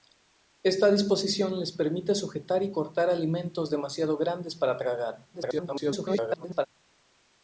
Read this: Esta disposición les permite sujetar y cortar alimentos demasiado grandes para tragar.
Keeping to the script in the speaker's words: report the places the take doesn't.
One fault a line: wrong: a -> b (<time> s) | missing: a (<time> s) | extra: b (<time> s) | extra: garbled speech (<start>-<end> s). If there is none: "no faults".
extra: garbled speech (5.3-6.7 s)